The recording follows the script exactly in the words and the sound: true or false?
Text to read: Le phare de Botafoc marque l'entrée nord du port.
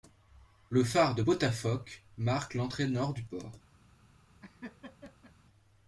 false